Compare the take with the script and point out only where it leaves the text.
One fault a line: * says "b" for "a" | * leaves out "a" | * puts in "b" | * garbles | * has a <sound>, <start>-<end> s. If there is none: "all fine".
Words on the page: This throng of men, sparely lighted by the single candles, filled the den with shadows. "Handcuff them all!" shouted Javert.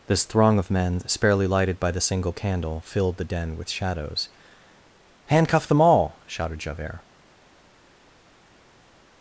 * says "candle" for "candles"